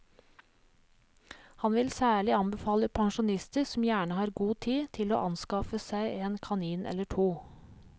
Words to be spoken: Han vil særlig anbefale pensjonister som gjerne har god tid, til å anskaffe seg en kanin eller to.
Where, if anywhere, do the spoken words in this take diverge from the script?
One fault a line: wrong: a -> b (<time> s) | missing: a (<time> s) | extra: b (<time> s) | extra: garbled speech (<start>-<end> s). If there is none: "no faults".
no faults